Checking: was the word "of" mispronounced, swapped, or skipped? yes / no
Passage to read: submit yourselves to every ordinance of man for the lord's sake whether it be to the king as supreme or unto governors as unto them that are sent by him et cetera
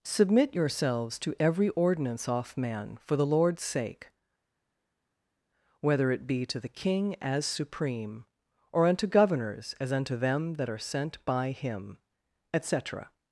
yes